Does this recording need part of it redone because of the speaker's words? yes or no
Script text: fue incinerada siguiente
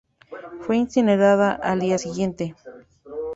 yes